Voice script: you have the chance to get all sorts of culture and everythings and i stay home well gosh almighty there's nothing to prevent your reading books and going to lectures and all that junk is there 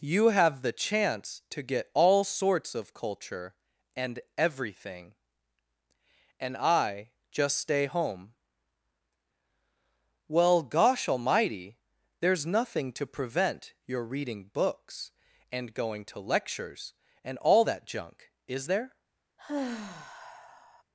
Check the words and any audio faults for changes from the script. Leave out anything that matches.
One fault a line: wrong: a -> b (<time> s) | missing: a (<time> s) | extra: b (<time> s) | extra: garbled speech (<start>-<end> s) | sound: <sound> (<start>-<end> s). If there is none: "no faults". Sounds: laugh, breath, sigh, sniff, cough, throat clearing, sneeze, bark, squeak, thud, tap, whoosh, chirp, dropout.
wrong: everythings -> everything (4.3 s)
extra: just (7.3 s)
sound: sigh (19.4-20.8 s)